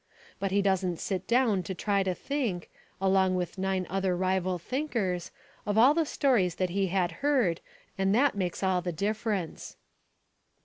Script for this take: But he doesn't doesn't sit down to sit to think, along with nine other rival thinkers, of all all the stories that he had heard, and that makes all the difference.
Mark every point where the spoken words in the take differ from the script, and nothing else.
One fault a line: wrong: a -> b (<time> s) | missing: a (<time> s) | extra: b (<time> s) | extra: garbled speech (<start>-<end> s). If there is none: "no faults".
missing: doesn't (1.0 s)
wrong: sit -> try (1.7 s)
missing: all (5.9 s)